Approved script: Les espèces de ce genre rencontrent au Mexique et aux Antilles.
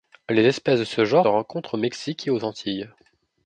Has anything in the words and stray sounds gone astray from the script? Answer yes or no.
no